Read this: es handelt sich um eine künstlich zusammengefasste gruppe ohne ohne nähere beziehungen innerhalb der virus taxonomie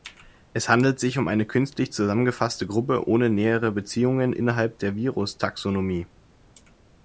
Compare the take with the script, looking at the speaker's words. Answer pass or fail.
fail